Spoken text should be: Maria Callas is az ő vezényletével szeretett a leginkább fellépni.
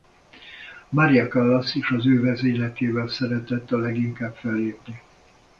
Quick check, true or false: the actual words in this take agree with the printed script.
true